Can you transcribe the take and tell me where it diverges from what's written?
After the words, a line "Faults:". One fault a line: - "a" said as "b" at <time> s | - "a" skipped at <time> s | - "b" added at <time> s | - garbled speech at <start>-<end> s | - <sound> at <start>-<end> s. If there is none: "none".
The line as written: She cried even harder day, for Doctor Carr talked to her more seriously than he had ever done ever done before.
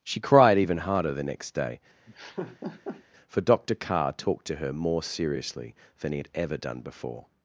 She cried even harder the next day, for Doctor Carr talked to her more seriously than he had ever done before.
Faults:
- "the next" added at 1.1 s
- laugh at 2.1-3.0 s
- "ever done" skipped at 6.8 s